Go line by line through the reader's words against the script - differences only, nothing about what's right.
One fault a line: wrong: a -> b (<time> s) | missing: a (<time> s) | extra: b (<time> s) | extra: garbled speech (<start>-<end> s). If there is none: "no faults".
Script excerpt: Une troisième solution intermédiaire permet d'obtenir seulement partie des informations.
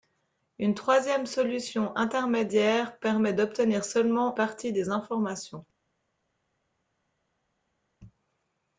no faults